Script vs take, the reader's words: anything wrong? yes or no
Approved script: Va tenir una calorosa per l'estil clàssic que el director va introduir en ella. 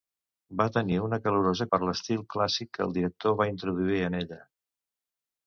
no